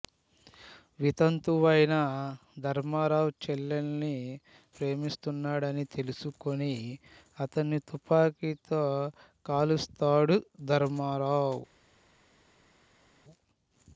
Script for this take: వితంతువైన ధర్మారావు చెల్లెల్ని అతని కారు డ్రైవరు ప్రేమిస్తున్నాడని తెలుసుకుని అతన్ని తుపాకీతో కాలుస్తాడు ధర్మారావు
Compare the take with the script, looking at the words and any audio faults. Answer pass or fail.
fail